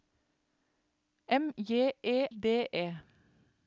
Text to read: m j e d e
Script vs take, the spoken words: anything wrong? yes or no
no